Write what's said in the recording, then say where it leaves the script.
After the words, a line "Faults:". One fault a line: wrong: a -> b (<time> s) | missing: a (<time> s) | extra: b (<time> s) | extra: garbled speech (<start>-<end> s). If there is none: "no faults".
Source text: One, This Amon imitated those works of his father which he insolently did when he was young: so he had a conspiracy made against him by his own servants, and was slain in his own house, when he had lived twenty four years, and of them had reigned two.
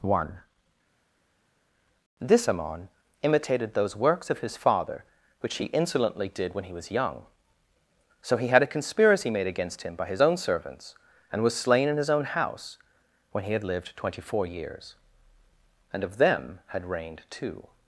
One, This Amon imitated those works of his father which he insolently did when he was young: so he had a conspiracy made against him by his own servants, and was slain in his own house, when he had lived twenty four years, and of them had reigned two.
Faults:
no faults